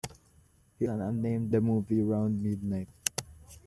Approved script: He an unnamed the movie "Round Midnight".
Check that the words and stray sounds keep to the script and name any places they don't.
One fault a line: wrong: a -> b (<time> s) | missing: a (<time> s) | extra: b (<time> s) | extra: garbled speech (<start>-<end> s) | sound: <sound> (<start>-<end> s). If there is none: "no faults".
no faults